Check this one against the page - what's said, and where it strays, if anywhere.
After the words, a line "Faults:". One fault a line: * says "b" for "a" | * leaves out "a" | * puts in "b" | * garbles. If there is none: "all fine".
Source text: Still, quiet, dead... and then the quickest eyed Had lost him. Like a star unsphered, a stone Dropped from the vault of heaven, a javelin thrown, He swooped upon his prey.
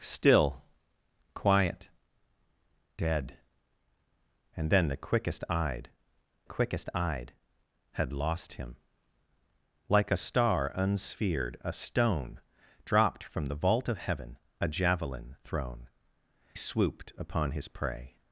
Still, quiet, dead... and then the quickest eyed quickest eyed Had lost him. Like a star unsphered, a stone Dropped from the vault of heaven, a javelin thrown, Swooped upon his prey.
Faults:
* puts in "quickest eyed"
* leaves out "He"